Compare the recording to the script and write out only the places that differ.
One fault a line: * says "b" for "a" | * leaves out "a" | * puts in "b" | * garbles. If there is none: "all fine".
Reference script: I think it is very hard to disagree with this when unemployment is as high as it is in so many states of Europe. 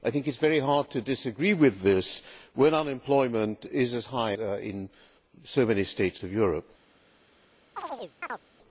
* leaves out "as it is"